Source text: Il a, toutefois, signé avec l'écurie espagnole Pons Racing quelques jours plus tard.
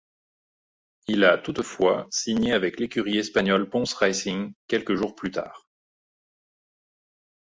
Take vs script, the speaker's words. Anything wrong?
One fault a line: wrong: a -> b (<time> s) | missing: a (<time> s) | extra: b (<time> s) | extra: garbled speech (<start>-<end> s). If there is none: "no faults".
no faults